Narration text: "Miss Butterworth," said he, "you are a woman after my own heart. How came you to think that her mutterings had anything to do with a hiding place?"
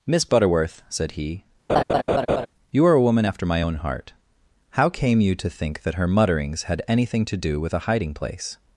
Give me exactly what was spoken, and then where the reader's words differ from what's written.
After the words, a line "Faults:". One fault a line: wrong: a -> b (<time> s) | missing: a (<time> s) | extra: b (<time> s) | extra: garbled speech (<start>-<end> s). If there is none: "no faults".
"Miss Butterworth," said he, "you are a woman after my own heart. How came you to think that her mutterings had anything to do with a hiding place?"
Faults:
no faults